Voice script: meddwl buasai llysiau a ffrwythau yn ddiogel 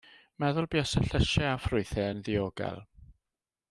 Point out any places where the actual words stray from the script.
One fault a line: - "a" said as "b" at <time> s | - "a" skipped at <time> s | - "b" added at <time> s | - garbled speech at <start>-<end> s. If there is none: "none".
none